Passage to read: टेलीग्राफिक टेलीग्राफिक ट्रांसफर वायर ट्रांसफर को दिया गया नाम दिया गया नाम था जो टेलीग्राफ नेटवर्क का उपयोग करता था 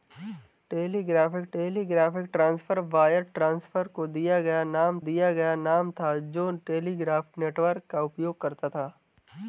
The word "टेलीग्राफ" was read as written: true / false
true